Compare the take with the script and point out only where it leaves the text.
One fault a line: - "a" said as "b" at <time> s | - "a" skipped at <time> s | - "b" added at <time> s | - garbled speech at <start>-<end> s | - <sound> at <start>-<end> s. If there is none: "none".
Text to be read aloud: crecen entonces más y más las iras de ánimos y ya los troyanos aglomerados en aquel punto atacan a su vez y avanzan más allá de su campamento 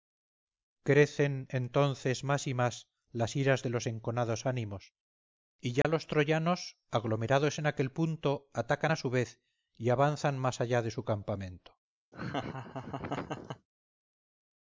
- "los enconados" added at 3.7 s
- dropout at 5.8-5.8 s
- laugh at 12.1-13.7 s